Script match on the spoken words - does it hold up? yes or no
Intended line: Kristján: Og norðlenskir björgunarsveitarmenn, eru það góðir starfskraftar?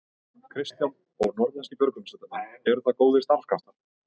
yes